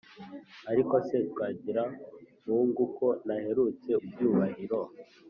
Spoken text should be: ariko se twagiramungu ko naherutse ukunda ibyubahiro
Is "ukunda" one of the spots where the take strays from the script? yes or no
yes